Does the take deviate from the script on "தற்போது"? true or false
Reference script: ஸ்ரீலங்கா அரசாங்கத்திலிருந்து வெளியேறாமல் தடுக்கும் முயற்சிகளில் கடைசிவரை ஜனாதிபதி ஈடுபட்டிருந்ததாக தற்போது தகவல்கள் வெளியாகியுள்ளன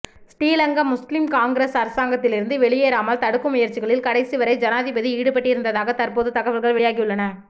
false